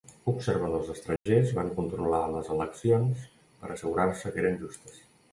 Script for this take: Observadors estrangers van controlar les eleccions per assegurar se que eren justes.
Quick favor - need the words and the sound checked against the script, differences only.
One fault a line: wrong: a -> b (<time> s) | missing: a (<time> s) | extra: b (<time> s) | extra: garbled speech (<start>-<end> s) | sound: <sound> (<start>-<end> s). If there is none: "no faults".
sound: dropout (1.2-1.3 s)